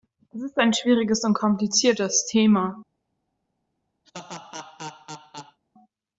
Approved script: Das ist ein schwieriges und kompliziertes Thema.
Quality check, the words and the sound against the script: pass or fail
fail